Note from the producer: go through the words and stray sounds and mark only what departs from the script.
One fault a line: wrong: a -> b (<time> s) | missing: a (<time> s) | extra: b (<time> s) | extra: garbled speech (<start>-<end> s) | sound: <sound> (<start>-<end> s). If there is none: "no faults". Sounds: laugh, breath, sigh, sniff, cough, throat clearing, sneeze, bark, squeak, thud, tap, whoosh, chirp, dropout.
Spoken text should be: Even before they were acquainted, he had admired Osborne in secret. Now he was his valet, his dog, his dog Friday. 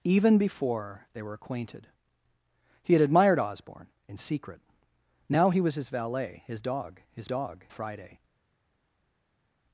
no faults